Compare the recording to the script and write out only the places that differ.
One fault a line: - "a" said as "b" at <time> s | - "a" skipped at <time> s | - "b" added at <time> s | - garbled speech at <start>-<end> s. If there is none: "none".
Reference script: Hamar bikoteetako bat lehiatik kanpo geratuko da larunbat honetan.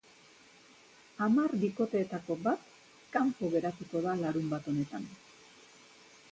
- "lehiatik" skipped at 2.6 s